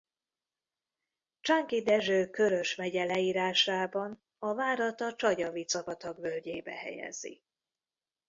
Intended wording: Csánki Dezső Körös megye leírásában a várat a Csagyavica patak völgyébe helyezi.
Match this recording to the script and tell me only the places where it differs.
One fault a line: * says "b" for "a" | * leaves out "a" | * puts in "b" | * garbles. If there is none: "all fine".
all fine